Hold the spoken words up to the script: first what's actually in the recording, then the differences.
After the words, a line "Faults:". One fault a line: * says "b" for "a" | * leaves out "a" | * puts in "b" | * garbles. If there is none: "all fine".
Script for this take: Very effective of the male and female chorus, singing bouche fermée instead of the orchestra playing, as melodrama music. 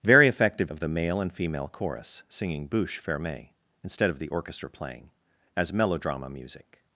Very effective of the male and female chorus, singing bouche fermée instead of the orchestra playing, as melodrama music.
Faults:
all fine